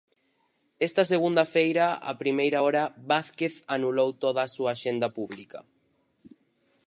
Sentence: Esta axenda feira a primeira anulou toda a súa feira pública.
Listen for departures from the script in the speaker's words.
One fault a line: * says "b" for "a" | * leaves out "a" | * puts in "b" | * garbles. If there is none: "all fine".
* says "segunda" for "axenda"
* puts in "hora Vázquez"
* says "axenda" for "feira"